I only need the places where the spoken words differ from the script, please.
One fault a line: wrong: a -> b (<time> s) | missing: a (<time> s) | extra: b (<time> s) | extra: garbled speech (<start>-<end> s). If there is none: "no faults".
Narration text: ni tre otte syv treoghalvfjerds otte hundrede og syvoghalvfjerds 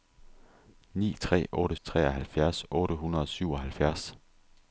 missing: syv (1.8 s)